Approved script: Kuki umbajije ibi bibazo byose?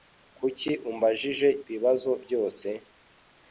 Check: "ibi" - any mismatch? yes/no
yes